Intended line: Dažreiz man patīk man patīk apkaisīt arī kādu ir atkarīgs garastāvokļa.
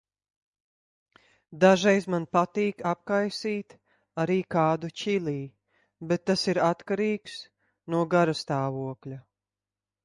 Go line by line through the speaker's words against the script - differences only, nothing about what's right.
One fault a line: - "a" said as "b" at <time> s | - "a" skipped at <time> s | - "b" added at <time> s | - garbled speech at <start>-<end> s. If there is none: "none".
- "man patīk" skipped at 2.8 s
- "čili bet tas" added at 5.0 s
- "no" added at 7.9 s